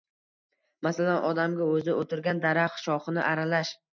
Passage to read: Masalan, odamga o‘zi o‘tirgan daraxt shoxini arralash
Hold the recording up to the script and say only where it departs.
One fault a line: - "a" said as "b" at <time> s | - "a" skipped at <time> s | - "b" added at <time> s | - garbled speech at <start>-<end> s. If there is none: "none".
none